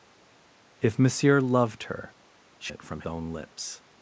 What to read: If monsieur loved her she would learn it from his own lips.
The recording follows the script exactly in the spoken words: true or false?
false